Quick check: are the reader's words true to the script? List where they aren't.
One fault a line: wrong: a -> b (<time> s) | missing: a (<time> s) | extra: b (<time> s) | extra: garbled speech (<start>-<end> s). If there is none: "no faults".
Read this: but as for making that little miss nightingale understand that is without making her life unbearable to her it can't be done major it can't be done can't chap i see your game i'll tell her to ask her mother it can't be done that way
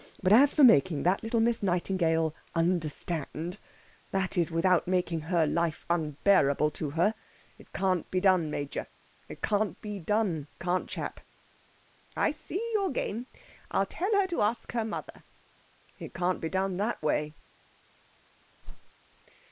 no faults